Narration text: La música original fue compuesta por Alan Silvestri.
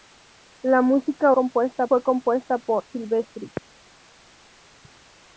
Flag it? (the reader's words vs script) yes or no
yes